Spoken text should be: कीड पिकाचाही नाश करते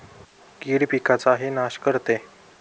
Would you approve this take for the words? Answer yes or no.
yes